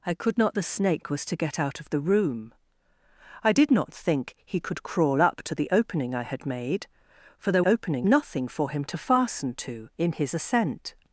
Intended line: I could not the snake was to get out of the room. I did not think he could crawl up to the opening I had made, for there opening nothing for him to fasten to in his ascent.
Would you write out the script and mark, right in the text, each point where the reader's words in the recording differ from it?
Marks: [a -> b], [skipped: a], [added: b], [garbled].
I could not the snake was to get out of the room. I did not think he could crawl up to the opening I had made, for there opening nothing for him to fasten to in his ascent.